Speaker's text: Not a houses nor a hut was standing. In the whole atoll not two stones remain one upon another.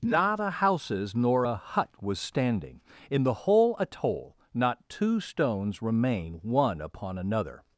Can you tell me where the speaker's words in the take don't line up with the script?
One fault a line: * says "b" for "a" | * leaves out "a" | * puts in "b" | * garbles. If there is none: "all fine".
all fine